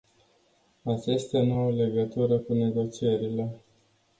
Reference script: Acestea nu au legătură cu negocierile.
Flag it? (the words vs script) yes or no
no